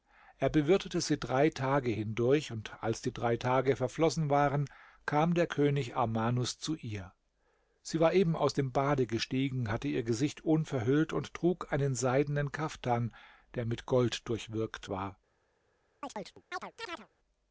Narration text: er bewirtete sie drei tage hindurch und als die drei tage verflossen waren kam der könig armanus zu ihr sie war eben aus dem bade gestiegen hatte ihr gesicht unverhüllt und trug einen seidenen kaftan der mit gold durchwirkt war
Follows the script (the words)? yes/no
yes